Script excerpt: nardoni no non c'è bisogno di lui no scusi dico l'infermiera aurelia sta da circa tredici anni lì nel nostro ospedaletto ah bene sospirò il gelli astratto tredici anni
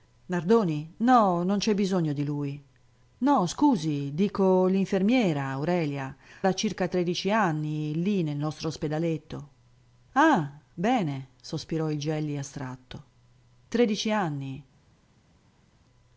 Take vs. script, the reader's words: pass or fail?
fail